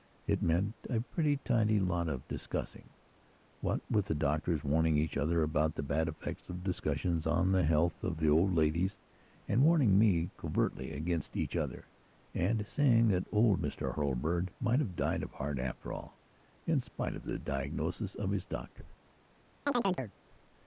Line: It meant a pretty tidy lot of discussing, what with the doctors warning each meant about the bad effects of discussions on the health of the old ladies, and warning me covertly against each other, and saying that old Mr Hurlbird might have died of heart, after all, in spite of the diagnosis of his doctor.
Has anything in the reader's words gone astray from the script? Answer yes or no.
yes